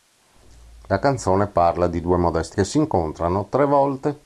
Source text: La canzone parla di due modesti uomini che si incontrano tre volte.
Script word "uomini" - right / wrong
wrong